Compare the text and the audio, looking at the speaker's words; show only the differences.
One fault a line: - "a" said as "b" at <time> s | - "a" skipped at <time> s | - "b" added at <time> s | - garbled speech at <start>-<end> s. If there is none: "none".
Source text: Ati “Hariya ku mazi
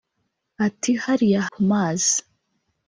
none